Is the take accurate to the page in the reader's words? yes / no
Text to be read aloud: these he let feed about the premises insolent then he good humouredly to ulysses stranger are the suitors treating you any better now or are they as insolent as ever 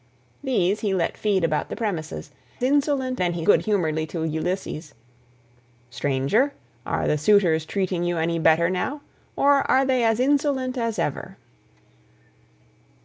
yes